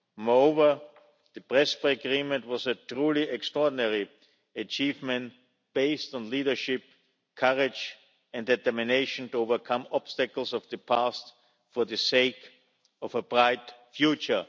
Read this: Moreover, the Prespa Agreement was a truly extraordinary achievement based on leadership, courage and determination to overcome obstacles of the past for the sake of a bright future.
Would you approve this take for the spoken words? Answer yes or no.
yes